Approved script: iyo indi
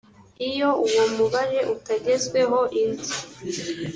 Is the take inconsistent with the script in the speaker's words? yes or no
yes